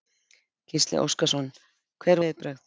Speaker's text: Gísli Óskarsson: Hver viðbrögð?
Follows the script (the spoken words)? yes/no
yes